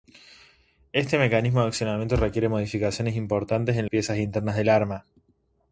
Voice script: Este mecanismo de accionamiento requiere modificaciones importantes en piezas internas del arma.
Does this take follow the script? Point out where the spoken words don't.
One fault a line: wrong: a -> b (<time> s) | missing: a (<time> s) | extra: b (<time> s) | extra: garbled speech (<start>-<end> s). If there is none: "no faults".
no faults